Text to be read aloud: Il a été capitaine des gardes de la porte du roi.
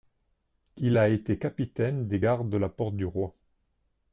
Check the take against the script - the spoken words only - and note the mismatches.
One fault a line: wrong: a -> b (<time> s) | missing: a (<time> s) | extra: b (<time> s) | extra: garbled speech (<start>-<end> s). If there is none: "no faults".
no faults